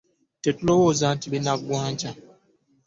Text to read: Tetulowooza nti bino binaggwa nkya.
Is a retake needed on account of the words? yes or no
yes